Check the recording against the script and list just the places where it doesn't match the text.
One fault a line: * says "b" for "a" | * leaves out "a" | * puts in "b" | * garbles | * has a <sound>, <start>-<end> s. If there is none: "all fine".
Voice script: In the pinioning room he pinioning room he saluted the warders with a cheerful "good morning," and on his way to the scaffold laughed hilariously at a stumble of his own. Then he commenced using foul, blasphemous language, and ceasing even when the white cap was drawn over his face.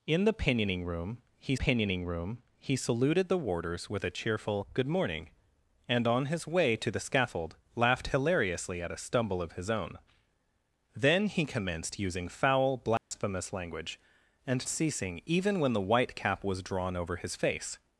* has a dropout, 13.0-13.1 s